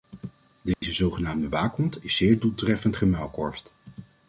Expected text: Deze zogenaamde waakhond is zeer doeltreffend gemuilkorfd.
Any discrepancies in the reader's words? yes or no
no